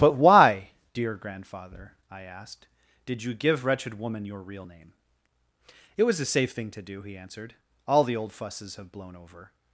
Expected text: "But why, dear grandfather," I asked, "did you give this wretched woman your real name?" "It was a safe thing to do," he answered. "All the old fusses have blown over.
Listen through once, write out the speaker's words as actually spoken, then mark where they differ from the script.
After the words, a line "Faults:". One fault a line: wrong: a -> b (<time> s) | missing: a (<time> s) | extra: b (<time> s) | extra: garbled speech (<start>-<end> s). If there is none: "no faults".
"But why, dear grandfather," I asked, "did you give wretched woman your real name?" "It was a safe thing to do," he answered. "All the old fusses have blown over.
Faults:
missing: this (3.6 s)